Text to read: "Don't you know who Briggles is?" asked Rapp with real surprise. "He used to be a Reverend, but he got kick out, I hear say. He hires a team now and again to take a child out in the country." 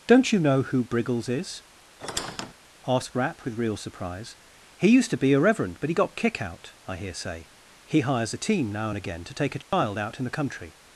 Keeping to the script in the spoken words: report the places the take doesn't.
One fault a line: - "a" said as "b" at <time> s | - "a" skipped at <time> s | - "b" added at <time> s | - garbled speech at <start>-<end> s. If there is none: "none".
none